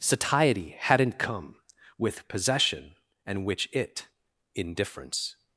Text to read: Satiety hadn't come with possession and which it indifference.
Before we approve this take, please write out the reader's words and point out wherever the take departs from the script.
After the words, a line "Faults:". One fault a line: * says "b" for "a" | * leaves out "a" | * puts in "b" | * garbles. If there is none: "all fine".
Satiety hadn't come with possession and which it indifference.
Faults:
all fine